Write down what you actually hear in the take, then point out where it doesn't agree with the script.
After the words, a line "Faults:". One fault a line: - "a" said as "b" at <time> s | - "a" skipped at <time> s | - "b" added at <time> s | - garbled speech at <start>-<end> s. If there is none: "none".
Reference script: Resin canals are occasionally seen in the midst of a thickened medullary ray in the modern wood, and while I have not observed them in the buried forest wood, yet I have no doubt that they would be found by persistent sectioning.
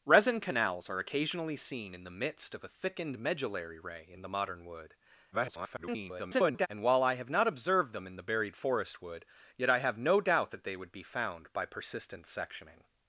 Resin canals are occasionally seen in the midst of a thickened medullary ray in the modern wood, [garbled] and while I have not observed them in the buried forest wood, yet I have no doubt that they would be found by persistent sectioning.
Faults:
- garbled speech at 5.3-6.7 s